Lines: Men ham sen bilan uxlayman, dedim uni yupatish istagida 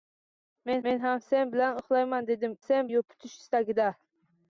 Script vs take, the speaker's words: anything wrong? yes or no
yes